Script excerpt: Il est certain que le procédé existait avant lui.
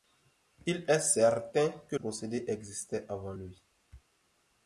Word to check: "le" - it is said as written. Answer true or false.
false